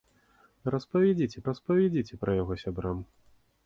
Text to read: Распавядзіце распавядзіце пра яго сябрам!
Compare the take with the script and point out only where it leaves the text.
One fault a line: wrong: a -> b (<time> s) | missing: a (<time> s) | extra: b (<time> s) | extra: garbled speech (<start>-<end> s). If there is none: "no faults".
no faults